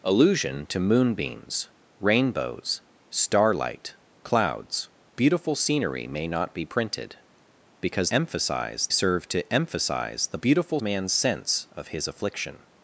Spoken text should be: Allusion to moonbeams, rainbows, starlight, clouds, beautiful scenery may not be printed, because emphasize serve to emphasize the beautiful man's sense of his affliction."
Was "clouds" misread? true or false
false